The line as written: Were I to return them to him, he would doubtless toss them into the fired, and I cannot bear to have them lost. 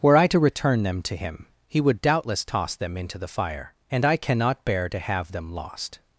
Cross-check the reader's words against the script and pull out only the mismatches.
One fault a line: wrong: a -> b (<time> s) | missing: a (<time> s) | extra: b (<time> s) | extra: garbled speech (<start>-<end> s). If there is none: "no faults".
wrong: fired -> fire (3.3 s)